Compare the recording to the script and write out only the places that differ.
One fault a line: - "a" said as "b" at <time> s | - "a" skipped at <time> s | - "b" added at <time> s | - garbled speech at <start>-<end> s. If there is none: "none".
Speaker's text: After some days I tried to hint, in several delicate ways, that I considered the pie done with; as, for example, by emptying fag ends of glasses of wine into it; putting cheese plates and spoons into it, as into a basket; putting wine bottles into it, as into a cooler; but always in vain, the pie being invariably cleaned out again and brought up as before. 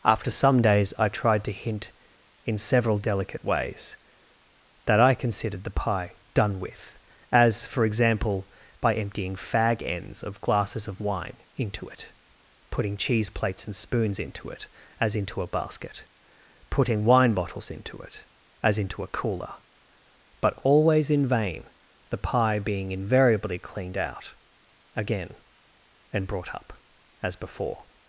none